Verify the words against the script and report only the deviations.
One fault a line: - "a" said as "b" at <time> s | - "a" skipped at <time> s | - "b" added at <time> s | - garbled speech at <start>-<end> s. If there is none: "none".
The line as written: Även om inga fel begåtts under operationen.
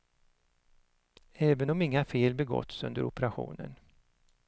none